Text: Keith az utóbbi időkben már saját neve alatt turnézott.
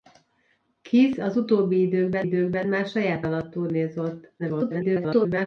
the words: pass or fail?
fail